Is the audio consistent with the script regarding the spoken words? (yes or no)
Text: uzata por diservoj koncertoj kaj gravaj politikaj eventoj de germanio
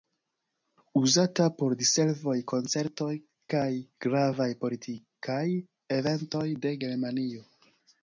yes